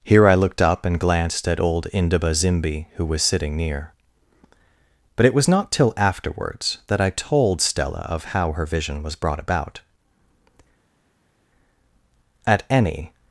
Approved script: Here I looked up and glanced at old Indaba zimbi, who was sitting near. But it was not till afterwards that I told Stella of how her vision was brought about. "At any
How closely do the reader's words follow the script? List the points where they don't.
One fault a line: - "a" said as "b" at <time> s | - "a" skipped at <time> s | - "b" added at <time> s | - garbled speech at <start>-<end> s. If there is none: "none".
none